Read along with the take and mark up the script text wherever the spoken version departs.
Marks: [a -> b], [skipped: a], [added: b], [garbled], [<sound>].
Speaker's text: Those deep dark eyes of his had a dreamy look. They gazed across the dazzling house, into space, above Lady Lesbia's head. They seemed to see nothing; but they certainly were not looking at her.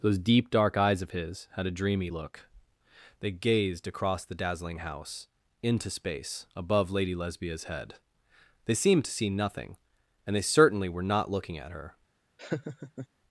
Those deep dark eyes of his had a dreamy look. They gazed across the dazzling house, into space, above Lady Lesbia's head. They seemed to see nothing; [but -> and] they certainly were not looking at her. [laugh]